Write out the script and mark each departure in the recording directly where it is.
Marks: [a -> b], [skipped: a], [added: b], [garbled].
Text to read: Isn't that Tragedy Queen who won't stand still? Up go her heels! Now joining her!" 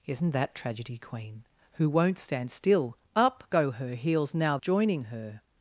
Isn't that Tragedy Queen who won't stand still? Up go her heels! Now joining her!"